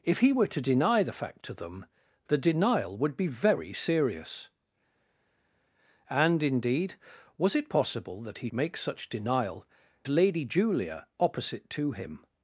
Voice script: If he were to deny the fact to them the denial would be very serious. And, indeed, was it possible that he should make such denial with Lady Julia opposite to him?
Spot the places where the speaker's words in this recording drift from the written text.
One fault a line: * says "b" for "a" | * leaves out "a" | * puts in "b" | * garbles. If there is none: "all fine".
* leaves out "should"
* leaves out "with"